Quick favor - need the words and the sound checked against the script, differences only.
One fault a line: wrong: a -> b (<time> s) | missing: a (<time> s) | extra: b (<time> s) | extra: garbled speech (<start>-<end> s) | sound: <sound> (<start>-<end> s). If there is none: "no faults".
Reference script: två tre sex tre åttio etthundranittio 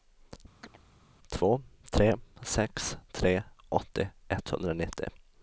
sound: chirp (0.6-0.8 s)